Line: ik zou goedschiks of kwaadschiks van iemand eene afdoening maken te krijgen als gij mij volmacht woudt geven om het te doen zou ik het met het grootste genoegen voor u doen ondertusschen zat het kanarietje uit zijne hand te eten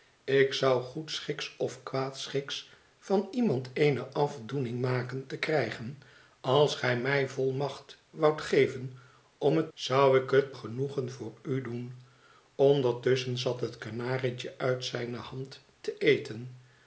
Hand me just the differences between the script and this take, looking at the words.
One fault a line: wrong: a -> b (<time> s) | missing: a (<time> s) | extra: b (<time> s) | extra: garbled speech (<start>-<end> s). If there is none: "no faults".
missing: te doen (9.7 s)
missing: met het grootste (10.6 s)